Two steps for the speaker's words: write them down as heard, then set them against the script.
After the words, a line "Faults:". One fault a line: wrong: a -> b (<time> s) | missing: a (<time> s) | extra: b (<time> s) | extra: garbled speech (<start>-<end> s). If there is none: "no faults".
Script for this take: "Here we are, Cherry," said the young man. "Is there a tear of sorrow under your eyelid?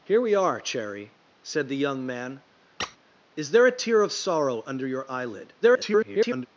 "Here we are, Cherry," said the young man. "Is there a tear of sorrow under your eyelid? [garbled]
Faults:
extra: garbled speech (5.6-6.5 s)